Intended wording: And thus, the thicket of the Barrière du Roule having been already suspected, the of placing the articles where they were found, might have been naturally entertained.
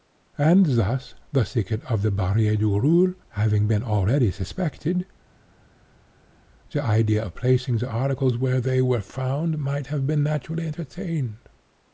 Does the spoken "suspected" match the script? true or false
true